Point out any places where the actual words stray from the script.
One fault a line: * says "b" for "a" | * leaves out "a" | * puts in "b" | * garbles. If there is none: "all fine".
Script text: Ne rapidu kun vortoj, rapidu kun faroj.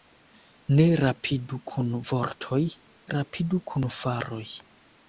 all fine